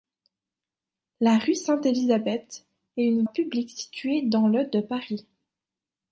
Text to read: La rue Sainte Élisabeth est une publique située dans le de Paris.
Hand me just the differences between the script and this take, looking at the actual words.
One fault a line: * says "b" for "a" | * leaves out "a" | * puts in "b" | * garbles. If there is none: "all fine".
all fine